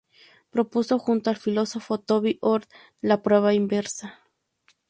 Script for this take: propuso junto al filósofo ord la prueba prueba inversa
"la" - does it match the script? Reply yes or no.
yes